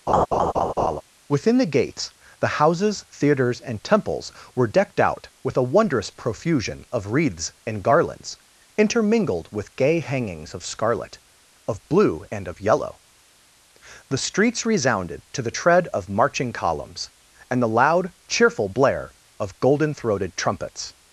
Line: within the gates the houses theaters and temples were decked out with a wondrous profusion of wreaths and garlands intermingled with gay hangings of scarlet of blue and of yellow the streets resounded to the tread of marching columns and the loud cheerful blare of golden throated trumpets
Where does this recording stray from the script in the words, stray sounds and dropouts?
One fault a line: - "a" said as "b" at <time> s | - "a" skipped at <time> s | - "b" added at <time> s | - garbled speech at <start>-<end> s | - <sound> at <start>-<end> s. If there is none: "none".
- laugh at 0.1-1.0 s